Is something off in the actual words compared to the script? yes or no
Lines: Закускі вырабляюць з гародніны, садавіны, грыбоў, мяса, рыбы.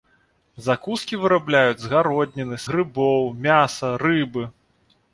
yes